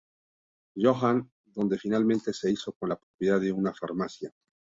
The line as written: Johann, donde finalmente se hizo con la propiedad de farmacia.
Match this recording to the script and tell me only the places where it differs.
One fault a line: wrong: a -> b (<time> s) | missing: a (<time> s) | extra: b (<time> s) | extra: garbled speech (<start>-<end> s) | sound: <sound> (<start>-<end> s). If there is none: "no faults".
sound: dropout (3.0-3.1 s)
extra: una (3.5 s)